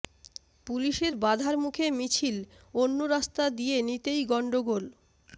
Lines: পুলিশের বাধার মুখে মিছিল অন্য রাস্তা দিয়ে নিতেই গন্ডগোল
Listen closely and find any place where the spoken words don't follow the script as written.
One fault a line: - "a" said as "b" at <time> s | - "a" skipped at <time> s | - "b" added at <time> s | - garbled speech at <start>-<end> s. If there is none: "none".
none